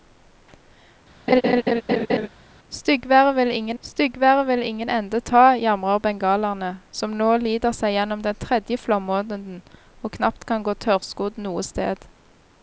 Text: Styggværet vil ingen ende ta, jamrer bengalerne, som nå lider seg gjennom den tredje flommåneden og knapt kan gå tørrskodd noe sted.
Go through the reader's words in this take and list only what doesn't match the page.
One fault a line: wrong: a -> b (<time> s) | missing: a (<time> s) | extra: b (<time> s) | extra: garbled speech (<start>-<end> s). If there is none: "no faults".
extra: styggværet vil ingen (3.8 s)